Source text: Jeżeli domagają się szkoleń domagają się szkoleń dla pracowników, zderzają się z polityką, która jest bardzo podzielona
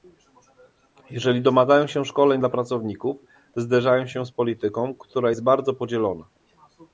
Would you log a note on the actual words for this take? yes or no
yes